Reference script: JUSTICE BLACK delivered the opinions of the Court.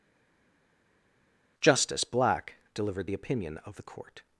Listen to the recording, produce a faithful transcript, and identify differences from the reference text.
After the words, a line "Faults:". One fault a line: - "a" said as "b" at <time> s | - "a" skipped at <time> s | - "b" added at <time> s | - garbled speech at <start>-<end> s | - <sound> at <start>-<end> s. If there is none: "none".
JUSTICE BLACK delivered the opinion of the Court.
Faults:
- "opinions" said as "opinion" at 3.1 s